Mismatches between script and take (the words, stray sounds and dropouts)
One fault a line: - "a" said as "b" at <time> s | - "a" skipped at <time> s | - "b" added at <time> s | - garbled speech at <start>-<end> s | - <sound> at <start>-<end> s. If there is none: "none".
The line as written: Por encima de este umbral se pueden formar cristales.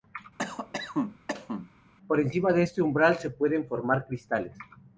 - cough at 0.4-1.7 s